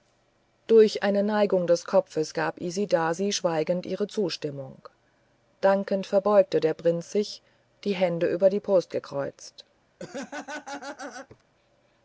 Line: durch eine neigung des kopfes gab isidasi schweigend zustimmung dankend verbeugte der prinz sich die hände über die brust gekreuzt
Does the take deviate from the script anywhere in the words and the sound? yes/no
yes